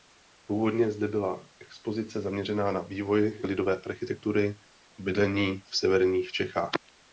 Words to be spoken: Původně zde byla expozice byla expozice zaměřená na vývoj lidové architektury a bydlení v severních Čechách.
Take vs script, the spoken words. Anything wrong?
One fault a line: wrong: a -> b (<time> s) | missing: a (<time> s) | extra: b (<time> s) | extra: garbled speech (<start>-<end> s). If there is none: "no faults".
missing: byla expozice (2.2 s)